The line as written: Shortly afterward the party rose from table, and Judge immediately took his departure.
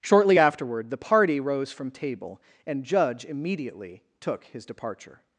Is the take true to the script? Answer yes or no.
yes